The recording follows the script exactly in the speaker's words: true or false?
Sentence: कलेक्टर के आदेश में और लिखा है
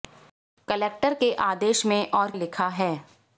true